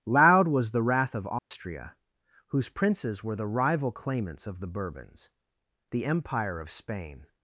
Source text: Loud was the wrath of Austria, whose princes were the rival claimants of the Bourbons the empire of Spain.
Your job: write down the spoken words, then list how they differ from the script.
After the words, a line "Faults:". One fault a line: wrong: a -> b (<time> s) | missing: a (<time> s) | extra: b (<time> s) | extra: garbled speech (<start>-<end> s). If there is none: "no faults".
Loud was the wrath of Austria, whose princes were the rival claimants of the Bourbons the empire of Spain.
Faults:
no faults